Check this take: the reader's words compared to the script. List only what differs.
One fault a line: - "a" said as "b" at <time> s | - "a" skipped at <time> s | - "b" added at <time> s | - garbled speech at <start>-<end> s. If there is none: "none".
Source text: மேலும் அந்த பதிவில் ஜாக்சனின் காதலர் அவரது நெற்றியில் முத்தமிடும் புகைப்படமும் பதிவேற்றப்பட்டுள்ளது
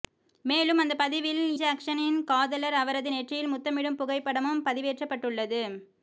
none